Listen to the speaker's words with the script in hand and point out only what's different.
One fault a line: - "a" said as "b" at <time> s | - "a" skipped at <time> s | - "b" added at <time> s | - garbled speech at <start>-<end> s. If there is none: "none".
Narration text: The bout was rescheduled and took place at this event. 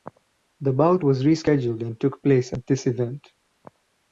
none